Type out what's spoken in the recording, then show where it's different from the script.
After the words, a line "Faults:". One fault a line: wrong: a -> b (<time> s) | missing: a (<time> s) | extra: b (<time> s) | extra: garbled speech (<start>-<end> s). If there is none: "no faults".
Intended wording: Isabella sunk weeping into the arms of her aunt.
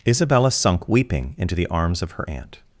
Isabella sunk weeping into the arms of her aunt.
Faults:
no faults